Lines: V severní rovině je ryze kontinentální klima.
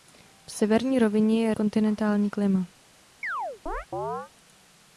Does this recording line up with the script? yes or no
no